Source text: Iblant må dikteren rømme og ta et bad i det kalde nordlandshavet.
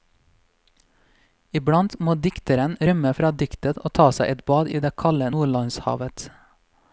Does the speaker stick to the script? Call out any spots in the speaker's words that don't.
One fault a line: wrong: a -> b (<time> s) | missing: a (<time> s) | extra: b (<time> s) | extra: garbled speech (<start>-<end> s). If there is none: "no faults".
extra: fra diktet (3.2 s)
extra: seg (4.2 s)